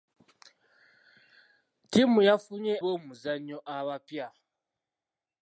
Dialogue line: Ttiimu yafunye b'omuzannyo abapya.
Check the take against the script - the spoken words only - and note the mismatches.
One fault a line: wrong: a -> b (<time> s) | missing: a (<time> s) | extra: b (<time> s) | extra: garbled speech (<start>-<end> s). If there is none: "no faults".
no faults